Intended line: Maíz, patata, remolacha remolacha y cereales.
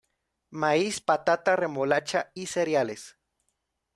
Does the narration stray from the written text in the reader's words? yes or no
yes